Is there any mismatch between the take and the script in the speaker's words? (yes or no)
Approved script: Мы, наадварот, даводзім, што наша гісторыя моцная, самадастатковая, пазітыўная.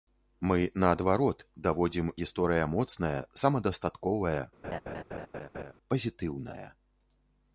yes